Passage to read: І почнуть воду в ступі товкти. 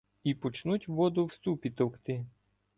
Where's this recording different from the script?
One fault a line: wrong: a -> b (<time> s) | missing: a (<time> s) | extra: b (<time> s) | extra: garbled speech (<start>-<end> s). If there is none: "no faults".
no faults